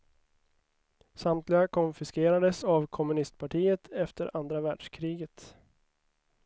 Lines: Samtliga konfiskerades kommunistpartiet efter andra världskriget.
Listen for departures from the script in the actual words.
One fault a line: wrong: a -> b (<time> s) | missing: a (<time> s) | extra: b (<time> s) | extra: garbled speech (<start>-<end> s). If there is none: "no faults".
extra: av (2.6 s)